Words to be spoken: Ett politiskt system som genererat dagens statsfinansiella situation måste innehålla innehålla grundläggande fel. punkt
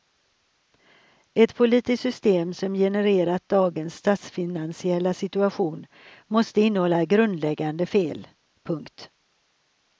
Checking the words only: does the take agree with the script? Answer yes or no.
no